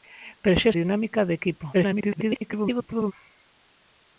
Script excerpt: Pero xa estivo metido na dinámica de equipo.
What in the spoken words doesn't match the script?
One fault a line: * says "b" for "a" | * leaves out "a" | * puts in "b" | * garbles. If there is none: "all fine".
* leaves out "estivo metido na"
* garbles